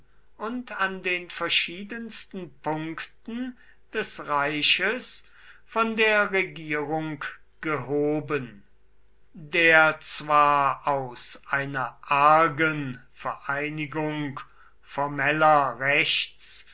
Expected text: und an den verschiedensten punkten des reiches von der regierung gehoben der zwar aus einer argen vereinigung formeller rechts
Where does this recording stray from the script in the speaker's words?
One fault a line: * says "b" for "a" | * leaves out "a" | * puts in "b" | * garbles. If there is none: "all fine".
all fine